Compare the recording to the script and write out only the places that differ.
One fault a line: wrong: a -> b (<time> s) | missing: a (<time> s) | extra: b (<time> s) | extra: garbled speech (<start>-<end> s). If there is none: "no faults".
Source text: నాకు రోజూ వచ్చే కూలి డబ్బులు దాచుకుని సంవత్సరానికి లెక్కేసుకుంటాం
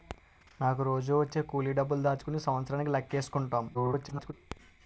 extra: garbled speech (3.7-4.3 s)